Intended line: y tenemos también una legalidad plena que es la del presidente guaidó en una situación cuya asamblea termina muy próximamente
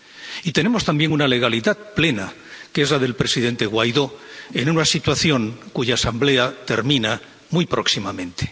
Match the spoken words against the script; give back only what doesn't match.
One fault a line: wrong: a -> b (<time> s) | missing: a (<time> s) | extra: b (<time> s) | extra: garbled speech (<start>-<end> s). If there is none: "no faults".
no faults